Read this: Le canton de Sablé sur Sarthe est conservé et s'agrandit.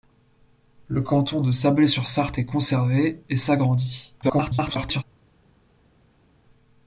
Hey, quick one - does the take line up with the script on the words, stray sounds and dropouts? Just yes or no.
no